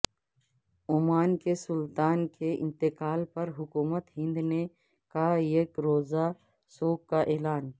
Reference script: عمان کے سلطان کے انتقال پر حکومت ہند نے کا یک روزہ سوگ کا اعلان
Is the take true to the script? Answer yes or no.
yes